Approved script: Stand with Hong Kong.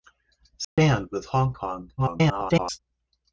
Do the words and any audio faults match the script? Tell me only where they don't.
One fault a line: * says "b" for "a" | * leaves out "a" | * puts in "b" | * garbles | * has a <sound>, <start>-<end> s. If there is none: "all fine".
* has a dropout, 0.6-0.8 s
* garbles